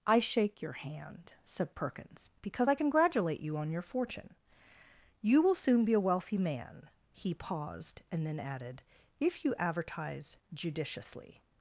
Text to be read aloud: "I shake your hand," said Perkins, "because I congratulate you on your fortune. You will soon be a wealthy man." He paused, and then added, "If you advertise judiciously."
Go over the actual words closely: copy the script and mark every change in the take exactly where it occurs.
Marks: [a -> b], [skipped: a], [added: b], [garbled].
"I shake your hand," said Perkins, "because I congratulate you on your fortune. You will soon be a wealthy man." He paused, and then added, "If you advertise judiciously."